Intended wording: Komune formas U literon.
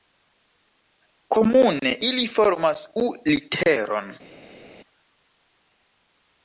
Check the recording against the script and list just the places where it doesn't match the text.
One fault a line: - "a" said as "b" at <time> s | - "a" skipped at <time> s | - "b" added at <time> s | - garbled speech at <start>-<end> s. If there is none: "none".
- "ili" added at 2.1 s